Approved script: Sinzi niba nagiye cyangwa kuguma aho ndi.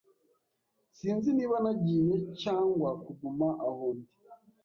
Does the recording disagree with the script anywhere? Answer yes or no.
no